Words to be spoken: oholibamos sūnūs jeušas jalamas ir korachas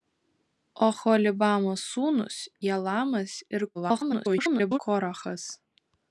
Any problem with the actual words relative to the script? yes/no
yes